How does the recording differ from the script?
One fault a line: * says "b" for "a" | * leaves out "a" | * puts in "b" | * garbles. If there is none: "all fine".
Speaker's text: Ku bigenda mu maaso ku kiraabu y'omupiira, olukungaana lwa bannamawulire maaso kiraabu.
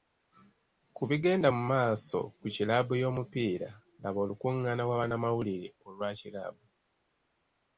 * puts in "laba"
* says "olwa" for "maaso"